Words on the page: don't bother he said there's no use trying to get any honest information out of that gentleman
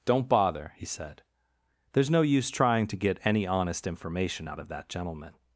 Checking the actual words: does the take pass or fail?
pass